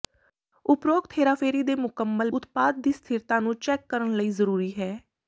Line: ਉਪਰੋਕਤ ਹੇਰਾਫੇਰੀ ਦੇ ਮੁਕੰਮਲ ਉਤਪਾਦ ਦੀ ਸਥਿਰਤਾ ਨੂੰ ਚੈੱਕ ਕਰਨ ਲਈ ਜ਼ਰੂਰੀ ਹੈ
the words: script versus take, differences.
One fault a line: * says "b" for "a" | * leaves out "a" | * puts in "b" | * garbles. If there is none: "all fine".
all fine